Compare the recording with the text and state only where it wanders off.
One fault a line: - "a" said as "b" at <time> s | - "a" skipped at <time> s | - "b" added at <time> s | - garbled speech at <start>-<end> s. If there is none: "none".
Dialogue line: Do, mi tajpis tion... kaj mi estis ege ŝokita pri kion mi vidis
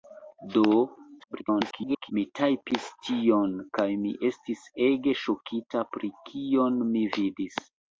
- garbled speech at 1.2-2.1 s